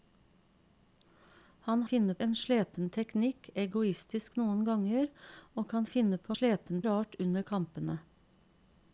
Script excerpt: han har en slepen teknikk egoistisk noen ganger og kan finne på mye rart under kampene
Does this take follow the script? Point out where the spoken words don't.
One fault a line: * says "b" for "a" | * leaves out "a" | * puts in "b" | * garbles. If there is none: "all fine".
* says "finne" for "har"
* says "slepen" for "mye"